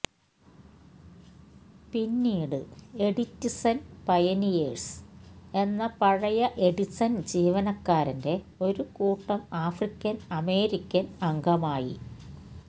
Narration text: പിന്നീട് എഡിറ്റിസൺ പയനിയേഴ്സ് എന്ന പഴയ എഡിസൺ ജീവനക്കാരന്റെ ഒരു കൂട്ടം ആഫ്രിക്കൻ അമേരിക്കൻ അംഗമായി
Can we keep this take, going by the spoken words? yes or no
yes